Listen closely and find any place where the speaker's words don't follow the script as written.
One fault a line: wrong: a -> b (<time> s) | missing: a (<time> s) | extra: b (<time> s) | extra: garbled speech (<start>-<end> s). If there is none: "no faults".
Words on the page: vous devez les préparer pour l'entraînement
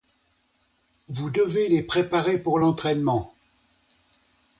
no faults